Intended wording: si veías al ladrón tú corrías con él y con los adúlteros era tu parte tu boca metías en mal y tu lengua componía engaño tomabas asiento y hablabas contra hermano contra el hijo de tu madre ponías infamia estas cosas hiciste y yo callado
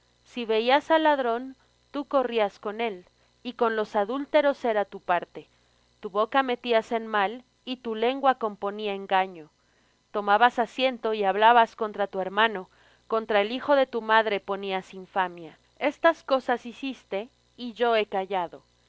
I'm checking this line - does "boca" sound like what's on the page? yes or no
yes